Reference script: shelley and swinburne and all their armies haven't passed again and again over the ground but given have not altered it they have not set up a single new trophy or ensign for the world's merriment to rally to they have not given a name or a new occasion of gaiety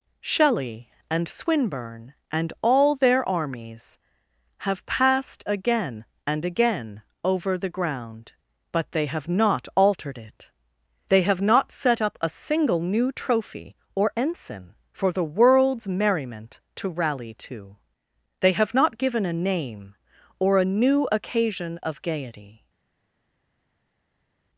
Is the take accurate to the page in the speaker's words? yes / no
no